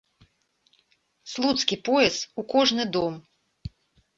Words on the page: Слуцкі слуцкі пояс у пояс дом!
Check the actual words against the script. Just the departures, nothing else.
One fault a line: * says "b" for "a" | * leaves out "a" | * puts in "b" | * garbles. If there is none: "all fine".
* leaves out "слуцкі"
* says "кожны" for "пояс"